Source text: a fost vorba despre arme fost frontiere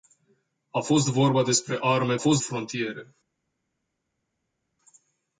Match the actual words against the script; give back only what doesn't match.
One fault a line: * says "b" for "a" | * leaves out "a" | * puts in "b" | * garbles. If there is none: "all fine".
all fine